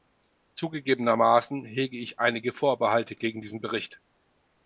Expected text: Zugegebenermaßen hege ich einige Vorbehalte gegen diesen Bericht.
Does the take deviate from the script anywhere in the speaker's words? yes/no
no